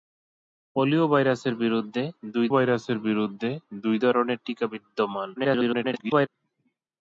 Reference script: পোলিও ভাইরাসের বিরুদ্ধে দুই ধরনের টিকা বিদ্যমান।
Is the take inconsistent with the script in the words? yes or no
yes